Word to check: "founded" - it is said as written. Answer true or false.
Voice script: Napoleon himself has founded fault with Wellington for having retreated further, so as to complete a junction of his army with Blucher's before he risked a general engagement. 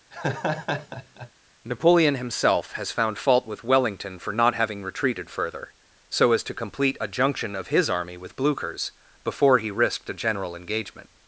false